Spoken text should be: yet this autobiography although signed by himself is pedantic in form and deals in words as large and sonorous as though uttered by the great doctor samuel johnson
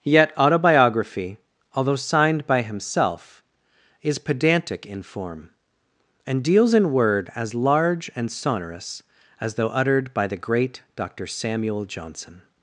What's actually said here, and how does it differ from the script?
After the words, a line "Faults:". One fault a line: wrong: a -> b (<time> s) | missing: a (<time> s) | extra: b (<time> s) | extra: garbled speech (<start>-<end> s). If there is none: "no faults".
yet autobiography although signed by himself is pedantic in form and deals in word as large and sonorous as though uttered by the great doctor samuel johnson
Faults:
missing: this (0.3 s)
wrong: words -> word (6.9 s)